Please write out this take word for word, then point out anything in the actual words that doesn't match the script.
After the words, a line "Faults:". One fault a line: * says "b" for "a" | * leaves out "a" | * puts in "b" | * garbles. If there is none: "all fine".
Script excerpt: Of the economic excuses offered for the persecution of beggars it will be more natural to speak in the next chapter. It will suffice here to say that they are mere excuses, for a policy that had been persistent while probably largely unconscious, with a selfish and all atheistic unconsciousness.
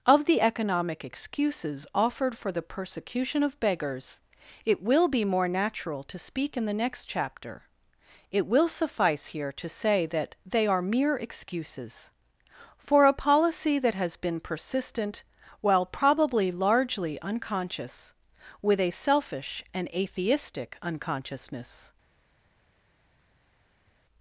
Of the economic excuses offered for the persecution of beggars it will be more natural to speak in the next chapter. It will suffice here to say that they are mere excuses, for a policy that has been persistent while probably largely unconscious, with a selfish and atheistic unconsciousness.
Faults:
* says "has" for "had"
* leaves out "all"